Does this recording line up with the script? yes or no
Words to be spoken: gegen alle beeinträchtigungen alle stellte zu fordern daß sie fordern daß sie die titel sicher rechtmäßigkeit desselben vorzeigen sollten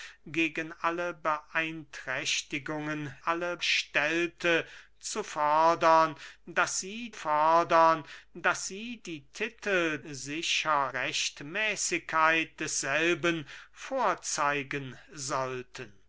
yes